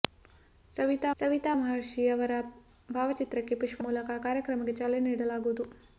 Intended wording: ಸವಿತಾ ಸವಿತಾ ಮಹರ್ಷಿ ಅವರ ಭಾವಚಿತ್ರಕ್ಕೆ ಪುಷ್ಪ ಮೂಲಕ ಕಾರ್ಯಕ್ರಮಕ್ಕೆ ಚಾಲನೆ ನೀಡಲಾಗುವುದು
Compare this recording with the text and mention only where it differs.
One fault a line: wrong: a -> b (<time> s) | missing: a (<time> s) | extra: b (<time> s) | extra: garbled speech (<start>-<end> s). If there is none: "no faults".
no faults